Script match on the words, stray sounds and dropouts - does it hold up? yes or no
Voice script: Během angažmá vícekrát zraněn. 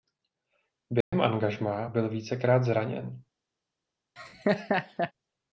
no